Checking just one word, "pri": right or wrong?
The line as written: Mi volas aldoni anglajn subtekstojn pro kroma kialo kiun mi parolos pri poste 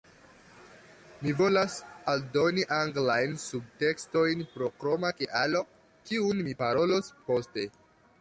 wrong